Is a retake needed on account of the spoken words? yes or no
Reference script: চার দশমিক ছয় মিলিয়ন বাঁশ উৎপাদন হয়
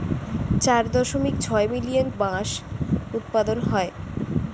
no